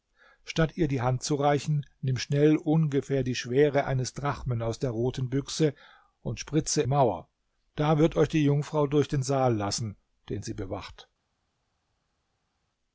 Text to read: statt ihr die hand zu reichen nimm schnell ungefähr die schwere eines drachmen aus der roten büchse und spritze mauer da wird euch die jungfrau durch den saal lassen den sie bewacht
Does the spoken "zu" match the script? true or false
true